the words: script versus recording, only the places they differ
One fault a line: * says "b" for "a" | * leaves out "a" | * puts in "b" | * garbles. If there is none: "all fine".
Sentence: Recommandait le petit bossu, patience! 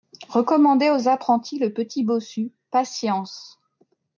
* puts in "aux apprentis"